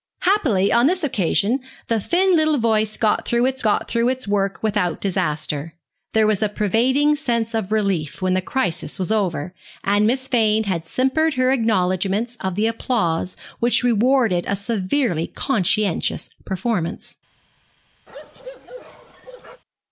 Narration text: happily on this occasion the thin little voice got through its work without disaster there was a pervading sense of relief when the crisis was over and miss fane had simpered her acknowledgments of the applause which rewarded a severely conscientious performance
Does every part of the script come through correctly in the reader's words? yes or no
no